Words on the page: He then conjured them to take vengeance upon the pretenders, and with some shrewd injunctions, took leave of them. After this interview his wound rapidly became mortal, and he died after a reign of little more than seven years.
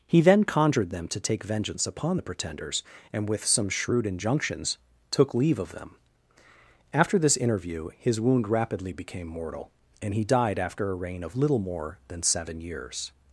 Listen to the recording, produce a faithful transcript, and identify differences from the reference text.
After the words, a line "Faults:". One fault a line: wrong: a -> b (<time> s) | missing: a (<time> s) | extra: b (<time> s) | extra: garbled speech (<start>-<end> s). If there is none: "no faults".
He then conjured them to take vengeance upon the pretenders, and with some shrewd injunctions, took leave of them. After this interview his wound rapidly became mortal, and he died after a reign of little more than seven years.
Faults:
no faults